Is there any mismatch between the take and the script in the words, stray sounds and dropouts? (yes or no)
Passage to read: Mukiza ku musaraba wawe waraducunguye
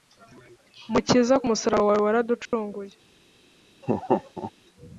yes